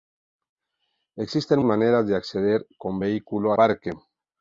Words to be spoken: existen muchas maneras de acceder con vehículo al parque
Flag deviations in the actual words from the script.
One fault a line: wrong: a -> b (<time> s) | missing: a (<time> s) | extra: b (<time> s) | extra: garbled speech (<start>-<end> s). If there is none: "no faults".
missing: muchas (1.6 s)
missing: al (3.5 s)